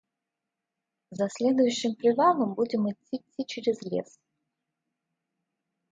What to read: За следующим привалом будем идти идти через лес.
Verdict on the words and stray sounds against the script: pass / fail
pass